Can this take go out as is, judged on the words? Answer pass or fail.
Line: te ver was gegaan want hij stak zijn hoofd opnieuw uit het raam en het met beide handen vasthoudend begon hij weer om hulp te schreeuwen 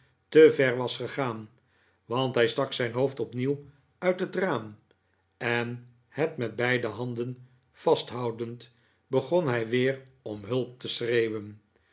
pass